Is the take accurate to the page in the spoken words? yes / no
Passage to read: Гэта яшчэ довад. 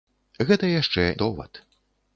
yes